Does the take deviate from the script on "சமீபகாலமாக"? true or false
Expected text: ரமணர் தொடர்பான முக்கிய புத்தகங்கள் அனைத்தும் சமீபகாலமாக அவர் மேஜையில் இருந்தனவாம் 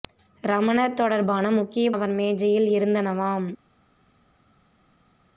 true